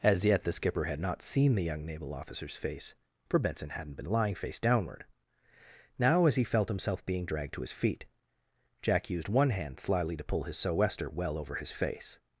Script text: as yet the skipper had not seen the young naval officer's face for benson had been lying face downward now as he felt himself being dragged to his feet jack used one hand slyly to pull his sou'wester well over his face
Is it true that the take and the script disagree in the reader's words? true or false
true